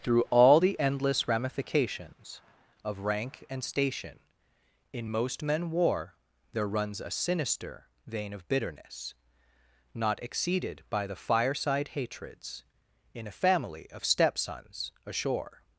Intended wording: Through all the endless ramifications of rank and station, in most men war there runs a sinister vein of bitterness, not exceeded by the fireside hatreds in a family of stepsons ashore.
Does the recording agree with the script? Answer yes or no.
yes